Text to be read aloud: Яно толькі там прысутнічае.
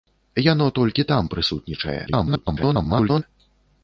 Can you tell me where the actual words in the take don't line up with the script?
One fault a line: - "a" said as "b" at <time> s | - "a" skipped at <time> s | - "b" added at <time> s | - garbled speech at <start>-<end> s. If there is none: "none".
- garbled speech at 2.1-3.2 s